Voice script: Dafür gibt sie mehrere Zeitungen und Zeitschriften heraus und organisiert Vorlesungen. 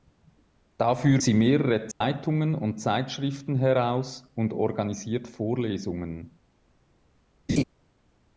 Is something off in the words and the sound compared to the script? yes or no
yes